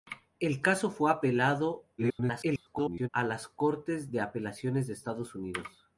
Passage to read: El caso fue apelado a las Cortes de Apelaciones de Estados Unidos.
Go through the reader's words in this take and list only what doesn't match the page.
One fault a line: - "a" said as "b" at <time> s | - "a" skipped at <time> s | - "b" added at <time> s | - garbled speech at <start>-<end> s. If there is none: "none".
- garbled speech at 2.0-3.1 s